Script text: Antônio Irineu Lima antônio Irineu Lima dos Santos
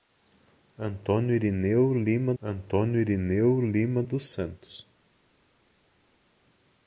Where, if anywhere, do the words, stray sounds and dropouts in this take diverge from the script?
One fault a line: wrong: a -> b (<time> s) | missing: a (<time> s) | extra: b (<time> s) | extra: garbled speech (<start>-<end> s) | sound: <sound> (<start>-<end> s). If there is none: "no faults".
no faults